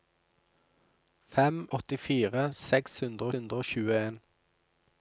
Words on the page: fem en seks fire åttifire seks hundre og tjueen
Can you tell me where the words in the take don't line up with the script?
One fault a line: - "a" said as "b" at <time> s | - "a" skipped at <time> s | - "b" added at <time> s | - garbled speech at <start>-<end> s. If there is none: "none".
- "en" said as "åttifire" at 1.8 s
- "fire åttifire seks" said as "hundre" at 3.0 s